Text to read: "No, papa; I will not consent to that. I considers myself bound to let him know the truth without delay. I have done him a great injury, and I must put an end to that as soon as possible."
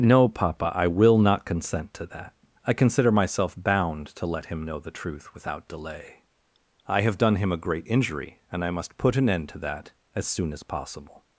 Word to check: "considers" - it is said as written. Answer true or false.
false